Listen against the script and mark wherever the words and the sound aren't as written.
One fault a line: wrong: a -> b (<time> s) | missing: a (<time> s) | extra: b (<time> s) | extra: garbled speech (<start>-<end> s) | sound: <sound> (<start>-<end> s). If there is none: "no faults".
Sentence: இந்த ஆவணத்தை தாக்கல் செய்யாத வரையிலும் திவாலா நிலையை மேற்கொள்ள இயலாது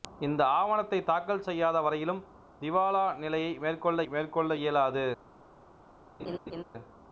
extra: மேற்கொள்ள (4.1 s)
sound: laugh (6.2-6.6 s)